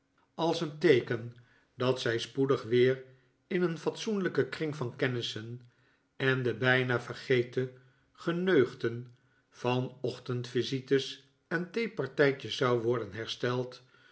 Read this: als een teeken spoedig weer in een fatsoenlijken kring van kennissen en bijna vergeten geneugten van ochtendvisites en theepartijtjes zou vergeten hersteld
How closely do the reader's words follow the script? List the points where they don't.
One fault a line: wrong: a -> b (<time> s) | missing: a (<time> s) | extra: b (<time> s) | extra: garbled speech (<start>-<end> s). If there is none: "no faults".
extra: dat zij (1.8 s)
extra: de (6.4 s)
wrong: vergeten -> worden (12.8 s)